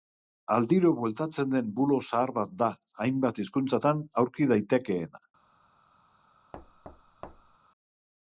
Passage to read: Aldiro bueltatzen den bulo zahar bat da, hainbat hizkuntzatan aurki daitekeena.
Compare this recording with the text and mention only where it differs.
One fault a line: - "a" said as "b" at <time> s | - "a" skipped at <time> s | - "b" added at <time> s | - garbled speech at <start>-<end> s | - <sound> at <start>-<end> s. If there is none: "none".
- thud at 6.5-7.6 s